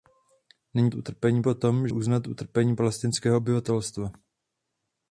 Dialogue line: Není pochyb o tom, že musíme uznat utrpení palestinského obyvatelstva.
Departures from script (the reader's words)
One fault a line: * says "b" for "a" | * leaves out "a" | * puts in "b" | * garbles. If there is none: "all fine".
* says "utrpení" for "pochyb"
* leaves out "že musíme"